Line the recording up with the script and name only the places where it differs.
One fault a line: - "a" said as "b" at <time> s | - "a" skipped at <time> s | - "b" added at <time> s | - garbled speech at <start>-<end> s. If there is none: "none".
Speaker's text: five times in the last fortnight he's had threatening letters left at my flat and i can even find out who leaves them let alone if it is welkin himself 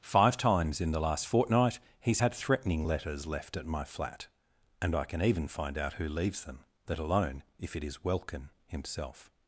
none